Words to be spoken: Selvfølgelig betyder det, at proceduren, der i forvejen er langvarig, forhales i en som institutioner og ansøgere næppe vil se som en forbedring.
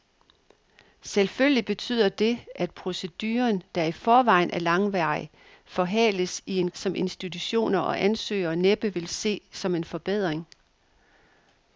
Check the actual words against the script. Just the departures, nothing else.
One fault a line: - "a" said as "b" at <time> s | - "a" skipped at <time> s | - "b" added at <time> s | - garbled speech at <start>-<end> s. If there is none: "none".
none